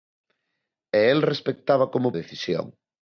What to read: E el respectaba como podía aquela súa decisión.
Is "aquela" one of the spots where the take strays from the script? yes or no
yes